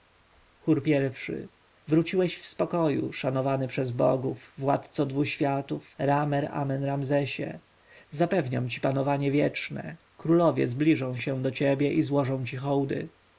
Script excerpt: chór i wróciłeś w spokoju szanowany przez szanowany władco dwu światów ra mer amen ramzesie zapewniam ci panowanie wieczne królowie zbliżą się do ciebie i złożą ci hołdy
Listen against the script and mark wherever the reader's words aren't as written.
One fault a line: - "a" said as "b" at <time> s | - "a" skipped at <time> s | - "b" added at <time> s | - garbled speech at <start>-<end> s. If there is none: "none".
- "szanowany" said as "bogów" at 3.9 s